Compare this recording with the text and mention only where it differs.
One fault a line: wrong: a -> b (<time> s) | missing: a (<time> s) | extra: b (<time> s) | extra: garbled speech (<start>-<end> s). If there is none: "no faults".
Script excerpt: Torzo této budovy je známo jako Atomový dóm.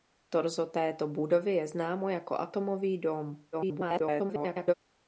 extra: garbled speech (3.5-4.7 s)